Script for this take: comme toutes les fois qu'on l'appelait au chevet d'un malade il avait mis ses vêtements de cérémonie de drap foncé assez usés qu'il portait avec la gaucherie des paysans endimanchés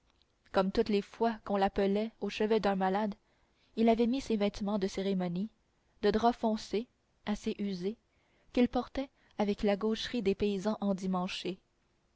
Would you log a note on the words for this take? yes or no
no